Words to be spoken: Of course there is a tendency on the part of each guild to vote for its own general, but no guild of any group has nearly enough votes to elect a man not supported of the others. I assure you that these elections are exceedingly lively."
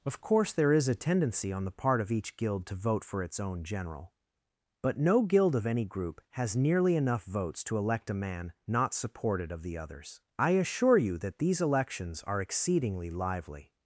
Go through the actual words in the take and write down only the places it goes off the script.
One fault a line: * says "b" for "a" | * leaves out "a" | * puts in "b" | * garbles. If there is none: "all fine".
all fine